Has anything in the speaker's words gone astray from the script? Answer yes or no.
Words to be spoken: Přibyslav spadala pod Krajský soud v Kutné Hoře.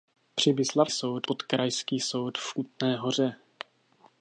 yes